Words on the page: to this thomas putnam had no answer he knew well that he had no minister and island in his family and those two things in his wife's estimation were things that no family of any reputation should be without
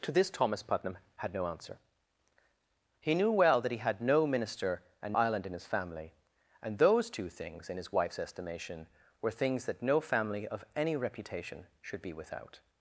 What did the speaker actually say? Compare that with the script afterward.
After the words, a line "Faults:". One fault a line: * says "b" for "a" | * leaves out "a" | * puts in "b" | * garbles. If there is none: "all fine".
to this thomas putnam had no answer he knew well that he had no minister and island in his family and those two things in his wife's estimation were things that no family of any reputation should be without
Faults:
all fine